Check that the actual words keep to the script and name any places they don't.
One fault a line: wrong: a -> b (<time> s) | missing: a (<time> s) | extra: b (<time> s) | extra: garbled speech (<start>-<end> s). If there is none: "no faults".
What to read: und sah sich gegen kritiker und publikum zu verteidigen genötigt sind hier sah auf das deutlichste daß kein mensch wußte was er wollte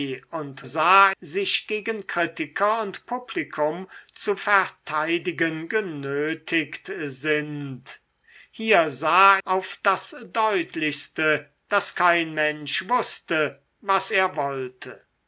no faults